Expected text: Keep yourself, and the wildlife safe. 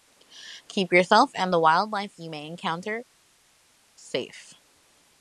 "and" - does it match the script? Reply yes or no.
yes